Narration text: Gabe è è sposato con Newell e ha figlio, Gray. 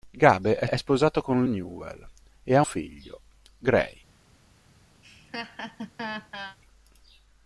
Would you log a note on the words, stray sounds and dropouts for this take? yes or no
yes